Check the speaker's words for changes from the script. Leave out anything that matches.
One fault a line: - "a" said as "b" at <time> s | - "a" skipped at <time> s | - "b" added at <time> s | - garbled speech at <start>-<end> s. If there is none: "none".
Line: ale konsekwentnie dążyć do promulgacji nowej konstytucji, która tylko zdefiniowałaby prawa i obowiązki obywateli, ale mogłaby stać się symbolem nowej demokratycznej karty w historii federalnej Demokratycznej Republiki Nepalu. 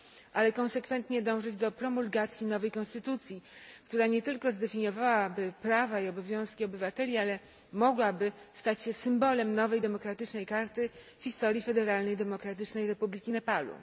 - "nie" added at 4.1 s